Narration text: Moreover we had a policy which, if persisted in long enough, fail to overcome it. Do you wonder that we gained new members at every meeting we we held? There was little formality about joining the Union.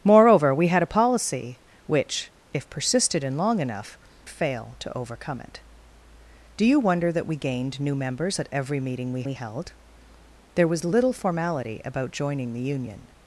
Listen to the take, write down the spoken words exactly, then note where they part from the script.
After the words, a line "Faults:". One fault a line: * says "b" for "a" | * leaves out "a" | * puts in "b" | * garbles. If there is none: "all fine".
Moreover we had a policy which, if persisted in long enough, fail to overcome it. Do you wonder that we gained new members at every meeting we we held? There was little formality about joining the Union.
Faults:
all fine